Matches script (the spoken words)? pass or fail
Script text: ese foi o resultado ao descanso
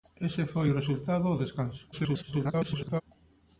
fail